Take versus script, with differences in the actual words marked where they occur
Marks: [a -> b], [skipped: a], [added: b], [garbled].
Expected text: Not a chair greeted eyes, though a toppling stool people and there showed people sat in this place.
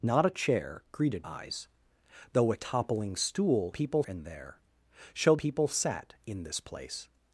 Not a chair greeted eyes, though a toppling stool people and there showed people sat in this place.